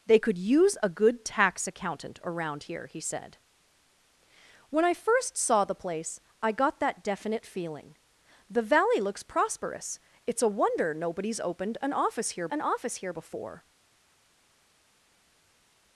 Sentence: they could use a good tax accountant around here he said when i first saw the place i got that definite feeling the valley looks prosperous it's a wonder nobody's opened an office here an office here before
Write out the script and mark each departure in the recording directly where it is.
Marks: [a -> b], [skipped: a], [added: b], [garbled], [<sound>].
they could use a good tax accountant around here he said when i first saw the place i got that definite feeling the valley looks prosperous it's a wonder nobody's opened an office here an office here before